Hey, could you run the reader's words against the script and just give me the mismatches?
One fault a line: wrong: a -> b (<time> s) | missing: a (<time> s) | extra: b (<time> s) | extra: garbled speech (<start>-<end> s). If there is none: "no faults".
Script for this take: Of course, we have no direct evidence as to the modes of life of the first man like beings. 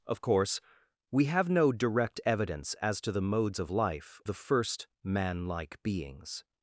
missing: of (4.2 s)